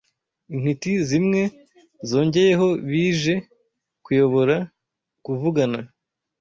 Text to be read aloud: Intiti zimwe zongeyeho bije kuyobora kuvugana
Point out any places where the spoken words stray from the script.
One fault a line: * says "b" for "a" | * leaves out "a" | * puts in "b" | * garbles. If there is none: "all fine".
all fine